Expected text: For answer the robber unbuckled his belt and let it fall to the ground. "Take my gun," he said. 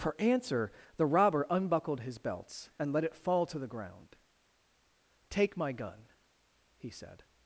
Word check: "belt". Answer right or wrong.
wrong